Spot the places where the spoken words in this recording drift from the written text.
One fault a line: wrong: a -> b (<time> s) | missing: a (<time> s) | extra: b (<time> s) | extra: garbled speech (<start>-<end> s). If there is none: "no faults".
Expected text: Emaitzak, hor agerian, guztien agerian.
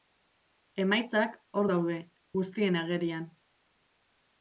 wrong: agerian -> daude (1.7 s)